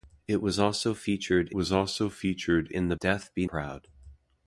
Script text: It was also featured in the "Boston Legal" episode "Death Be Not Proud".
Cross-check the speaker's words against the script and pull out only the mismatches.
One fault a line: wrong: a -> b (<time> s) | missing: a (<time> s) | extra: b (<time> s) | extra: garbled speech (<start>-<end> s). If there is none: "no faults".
wrong: in the Boston Legal episode -> was also featured in the (1.5 s)
missing: Not (3.4 s)